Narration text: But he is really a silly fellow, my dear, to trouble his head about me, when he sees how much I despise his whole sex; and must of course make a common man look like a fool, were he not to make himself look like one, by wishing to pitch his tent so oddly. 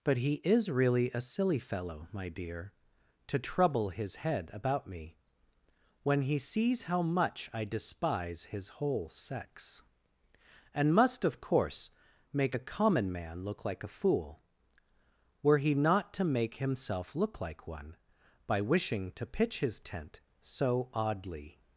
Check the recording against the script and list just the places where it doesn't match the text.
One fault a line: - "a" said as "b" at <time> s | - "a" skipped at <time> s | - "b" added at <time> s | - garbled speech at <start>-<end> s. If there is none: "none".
none